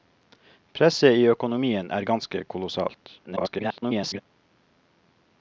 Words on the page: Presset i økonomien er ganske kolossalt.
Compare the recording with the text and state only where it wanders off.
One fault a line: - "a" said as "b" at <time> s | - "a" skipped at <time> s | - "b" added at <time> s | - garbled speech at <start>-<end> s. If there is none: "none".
- garbled speech at 3.2-4.2 s